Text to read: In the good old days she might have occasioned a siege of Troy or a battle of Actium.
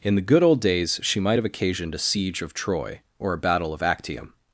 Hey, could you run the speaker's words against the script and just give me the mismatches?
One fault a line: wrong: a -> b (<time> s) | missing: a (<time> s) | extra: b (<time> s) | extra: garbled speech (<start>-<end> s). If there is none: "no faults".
no faults